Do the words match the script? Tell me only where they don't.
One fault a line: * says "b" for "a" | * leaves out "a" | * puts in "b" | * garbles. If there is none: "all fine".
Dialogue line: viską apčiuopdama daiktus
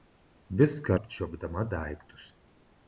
all fine